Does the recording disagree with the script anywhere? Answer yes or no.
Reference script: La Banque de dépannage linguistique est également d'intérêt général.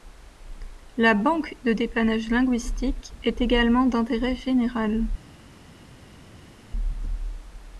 no